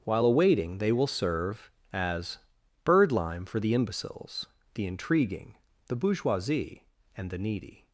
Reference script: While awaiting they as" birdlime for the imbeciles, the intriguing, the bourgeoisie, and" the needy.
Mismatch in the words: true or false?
true